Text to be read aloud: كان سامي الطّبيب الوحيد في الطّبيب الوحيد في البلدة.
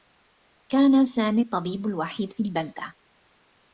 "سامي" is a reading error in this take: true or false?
false